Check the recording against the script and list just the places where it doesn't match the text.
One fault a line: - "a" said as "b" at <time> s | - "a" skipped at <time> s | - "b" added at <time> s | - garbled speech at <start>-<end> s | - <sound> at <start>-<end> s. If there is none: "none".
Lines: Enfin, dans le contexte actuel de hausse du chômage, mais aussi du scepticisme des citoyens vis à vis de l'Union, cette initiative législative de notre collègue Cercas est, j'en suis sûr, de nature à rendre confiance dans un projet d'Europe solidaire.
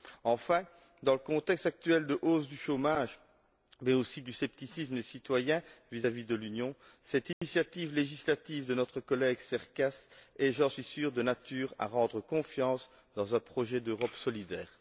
- dropout at 7.3-7.4 s